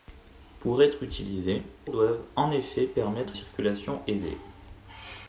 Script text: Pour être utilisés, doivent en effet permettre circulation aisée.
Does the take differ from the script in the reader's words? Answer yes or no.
no